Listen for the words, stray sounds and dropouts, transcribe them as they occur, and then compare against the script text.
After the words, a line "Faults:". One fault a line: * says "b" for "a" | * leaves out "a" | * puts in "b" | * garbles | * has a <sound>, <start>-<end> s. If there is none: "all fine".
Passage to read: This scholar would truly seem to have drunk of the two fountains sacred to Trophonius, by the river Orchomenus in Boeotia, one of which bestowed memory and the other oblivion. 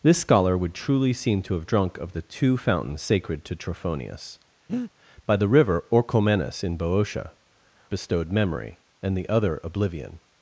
This scholar would truly seem to have drunk of the two fountains sacred to Trophonius, by the river Orchomenus in Boeotia, bestowed memory and the other oblivion.
Faults:
* has a breath, 4.7-4.9 s
* leaves out "one of which"